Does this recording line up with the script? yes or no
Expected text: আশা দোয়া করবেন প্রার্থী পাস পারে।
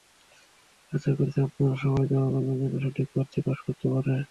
no